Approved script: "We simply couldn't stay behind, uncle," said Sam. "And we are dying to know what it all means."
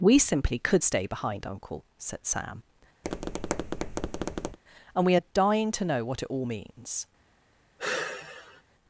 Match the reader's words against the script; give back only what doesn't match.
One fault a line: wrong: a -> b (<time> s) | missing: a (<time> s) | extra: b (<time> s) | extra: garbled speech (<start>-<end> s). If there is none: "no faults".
wrong: couldn't -> could (0.6 s)